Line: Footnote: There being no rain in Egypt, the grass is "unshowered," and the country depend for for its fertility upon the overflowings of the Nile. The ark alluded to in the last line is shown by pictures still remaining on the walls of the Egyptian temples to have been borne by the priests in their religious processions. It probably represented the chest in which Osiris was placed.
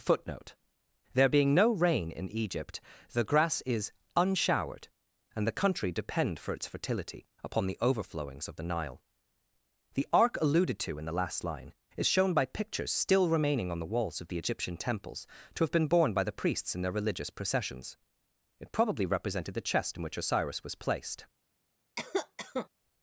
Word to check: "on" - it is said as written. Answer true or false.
true